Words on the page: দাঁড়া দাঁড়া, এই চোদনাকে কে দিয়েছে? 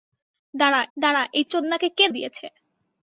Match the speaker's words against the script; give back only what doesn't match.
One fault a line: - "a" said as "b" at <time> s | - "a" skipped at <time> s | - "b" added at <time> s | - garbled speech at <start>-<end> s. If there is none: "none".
none